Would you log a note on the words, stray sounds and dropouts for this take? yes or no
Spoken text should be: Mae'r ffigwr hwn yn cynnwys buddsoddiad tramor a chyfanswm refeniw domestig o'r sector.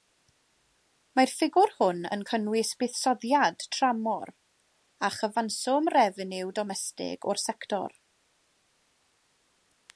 no